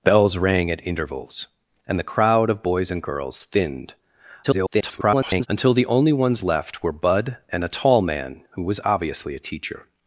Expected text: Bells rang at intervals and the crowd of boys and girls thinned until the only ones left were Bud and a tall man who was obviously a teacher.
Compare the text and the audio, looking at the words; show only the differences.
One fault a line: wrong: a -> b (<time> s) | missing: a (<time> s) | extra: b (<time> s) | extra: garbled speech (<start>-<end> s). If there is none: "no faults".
extra: garbled speech (4.4-5.5 s)